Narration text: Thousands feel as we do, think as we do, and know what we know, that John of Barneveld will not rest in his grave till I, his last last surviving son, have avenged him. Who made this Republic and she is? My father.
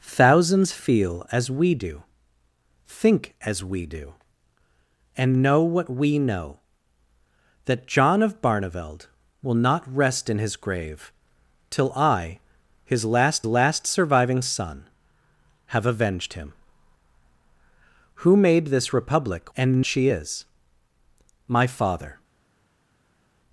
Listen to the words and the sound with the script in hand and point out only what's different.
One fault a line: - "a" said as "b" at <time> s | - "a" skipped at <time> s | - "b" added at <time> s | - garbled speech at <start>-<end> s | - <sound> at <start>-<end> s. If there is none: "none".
none